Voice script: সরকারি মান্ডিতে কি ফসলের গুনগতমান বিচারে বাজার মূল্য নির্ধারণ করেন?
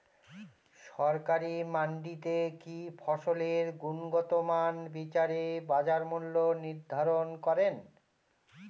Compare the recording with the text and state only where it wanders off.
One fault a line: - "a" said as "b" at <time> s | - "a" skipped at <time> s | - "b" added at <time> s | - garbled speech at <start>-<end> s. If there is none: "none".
none